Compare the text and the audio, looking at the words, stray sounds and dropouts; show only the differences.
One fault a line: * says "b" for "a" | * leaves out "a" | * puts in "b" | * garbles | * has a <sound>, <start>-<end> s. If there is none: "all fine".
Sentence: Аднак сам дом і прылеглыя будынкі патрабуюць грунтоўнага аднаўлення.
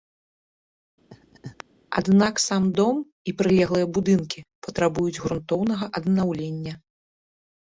* has a laugh, 1.1-1.6 s